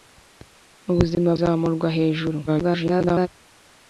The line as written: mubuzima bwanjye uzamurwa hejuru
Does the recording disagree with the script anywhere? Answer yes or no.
yes